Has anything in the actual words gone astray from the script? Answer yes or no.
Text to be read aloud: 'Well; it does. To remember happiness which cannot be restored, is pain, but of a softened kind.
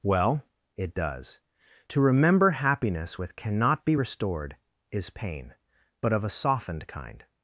yes